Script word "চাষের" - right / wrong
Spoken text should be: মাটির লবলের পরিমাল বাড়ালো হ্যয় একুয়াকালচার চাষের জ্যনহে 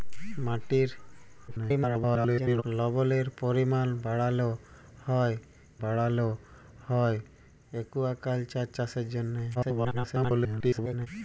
right